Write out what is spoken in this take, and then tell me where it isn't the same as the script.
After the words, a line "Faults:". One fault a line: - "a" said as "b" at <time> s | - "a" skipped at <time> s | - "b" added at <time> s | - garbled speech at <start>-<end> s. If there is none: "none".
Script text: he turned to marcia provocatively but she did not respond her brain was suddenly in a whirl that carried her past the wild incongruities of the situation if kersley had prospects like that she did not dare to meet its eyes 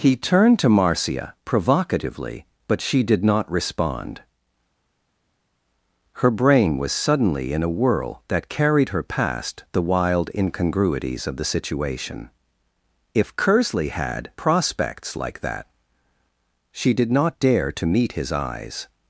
he turned to marcia provocatively but she did not respond her brain was suddenly in a whirl that carried her past the wild incongruities of the situation if kersley had prospects like that she did not dare to meet his eyes
Faults:
- "its" said as "his" at 18.2 s